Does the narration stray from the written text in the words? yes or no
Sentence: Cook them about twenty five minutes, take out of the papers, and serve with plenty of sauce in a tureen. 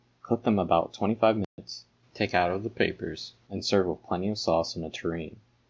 no